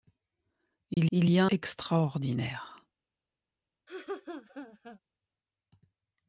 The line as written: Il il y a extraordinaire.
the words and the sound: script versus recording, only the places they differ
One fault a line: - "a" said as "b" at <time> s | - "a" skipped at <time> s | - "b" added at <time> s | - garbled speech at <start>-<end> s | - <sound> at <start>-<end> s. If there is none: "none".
- dropout at 0.9-1.0 s
- laugh at 3.9-5.0 s